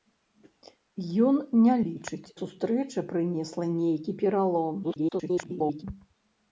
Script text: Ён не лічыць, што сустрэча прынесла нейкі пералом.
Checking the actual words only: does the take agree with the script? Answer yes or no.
no